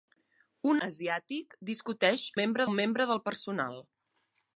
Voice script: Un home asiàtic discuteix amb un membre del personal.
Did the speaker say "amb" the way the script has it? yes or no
no